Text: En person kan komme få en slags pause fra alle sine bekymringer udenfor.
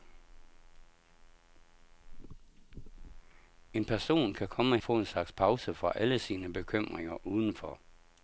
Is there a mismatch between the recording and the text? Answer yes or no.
no